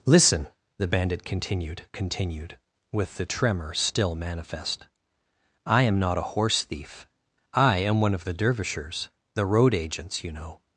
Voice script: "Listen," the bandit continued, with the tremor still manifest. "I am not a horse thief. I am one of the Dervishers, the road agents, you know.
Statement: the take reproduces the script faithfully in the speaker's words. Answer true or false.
false